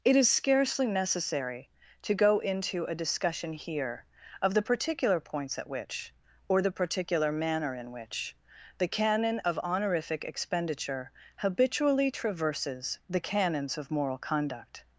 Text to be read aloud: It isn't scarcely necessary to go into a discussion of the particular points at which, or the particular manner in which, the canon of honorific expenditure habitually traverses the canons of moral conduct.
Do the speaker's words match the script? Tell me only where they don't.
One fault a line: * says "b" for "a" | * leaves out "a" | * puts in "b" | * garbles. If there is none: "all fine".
* says "is" for "isn't"
* puts in "here"